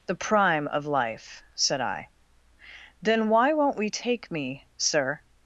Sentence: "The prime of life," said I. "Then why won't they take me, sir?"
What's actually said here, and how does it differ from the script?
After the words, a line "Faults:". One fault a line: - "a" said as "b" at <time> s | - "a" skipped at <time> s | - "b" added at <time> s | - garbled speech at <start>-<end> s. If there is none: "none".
"The prime of life," said I. "Then why won't we take me, sir?"
Faults:
- "they" said as "we" at 3.8 s